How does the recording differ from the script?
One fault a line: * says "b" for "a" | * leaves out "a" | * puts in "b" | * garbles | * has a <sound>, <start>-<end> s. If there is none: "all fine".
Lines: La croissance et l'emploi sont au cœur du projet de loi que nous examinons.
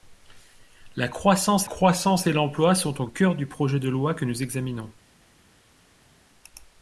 * puts in "croissance"